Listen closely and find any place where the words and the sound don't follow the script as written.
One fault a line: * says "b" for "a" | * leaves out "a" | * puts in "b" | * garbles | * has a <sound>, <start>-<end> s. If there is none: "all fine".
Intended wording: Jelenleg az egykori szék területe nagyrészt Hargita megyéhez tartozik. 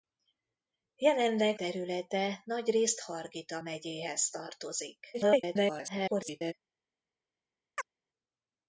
* leaves out "az egykori szék"
* garbles
* has a chirp, 7.8-7.9 s